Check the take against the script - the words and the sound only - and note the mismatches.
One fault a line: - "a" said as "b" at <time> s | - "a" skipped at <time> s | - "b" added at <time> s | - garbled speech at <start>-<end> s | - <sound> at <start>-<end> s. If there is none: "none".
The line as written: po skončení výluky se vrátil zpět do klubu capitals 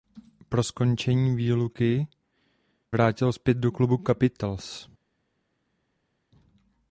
- "se" skipped at 2.1 s